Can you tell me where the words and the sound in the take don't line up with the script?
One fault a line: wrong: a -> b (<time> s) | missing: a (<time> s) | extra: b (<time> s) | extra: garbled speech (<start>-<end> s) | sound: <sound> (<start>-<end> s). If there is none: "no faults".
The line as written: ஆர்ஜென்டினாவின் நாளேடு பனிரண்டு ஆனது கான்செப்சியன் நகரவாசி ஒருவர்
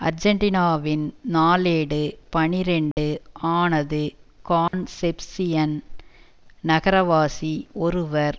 sound: dropout (2.9-3.0 s)
sound: dropout (4.7-4.7 s)